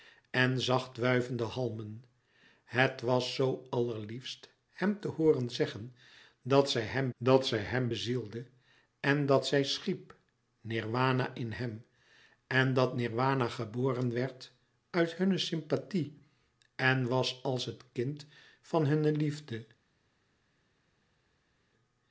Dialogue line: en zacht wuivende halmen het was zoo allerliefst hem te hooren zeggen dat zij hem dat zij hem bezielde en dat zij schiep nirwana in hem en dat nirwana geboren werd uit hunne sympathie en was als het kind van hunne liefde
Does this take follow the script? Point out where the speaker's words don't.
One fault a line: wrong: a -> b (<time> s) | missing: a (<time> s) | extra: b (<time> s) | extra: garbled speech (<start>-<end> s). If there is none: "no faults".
no faults